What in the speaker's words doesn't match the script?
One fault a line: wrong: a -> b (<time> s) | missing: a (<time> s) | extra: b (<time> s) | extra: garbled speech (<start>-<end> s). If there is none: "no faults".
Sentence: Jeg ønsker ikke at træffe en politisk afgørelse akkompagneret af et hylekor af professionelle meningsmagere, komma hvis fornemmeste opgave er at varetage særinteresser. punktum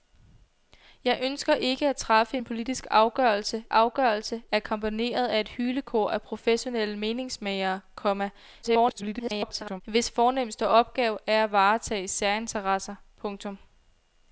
extra: afgørelse (3.7 s)
extra: garbled speech (8.6-9.8 s)